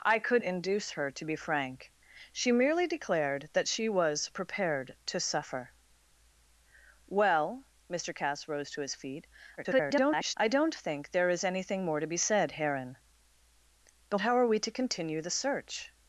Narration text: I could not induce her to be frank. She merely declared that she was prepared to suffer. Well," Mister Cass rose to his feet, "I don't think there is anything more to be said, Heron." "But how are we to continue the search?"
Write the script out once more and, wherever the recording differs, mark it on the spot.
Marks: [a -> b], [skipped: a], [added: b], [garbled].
I could [skipped: not] induce her to be frank. She merely declared that she was prepared to suffer. Well," Mister Cass rose to his feet, [garbled] "I don't think there is anything more to be said, Heron." "But how are we to continue the search?"